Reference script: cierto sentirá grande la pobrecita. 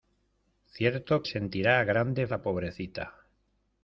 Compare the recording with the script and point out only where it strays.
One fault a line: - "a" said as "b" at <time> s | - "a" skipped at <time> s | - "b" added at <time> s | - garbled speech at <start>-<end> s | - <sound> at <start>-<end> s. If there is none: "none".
none